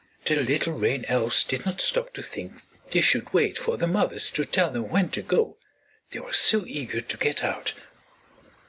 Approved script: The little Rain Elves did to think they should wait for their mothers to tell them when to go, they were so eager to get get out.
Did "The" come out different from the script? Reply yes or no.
no